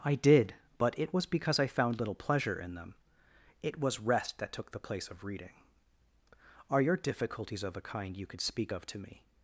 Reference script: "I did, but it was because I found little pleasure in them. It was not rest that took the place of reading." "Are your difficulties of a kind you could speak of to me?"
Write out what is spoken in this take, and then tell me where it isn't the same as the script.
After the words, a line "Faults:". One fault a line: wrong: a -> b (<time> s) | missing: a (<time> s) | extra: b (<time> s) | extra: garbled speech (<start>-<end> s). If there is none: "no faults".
"I did, but it was because I found little pleasure in them. It was rest that took the place of reading." "Are your difficulties of a kind you could speak of to me?"
Faults:
missing: not (4.0 s)